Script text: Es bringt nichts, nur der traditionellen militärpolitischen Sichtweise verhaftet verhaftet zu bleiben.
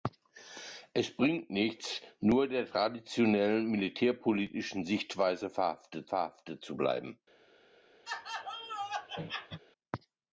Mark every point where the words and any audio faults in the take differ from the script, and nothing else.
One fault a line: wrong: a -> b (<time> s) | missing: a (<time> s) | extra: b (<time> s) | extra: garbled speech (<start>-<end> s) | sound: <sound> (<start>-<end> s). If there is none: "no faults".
sound: laugh (8.1-9.6 s)